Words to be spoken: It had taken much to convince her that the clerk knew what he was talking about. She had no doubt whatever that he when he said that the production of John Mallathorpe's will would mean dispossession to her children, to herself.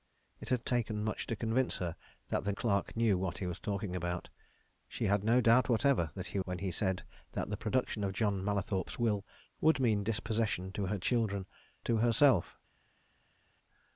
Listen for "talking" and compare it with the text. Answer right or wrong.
right